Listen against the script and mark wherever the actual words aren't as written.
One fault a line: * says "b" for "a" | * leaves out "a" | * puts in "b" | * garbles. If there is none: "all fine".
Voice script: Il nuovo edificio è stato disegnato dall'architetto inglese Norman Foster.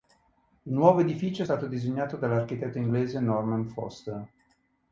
all fine